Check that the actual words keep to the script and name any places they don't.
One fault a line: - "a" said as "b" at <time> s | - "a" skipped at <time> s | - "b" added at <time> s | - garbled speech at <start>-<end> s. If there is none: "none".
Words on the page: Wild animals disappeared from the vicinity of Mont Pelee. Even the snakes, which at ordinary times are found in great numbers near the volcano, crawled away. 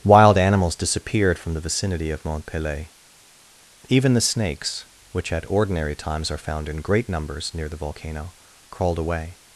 none